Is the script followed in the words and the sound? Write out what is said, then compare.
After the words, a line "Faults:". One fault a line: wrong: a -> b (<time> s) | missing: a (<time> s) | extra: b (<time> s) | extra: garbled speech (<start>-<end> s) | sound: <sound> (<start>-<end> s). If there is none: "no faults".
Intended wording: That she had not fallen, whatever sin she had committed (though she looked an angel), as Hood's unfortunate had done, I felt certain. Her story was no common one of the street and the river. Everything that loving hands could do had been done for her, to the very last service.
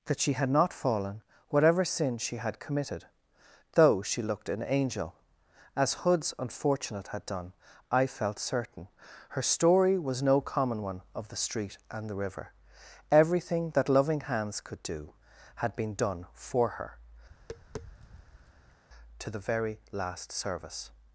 That she had not fallen, whatever sin she had committed (though she looked an angel), as Hood's unfortunate had done, I felt certain. Her story was no common one of the street and the river. Everything that loving hands could do had been done for her, to the very last service.
Faults:
sound: tap (17.3-18.8 s)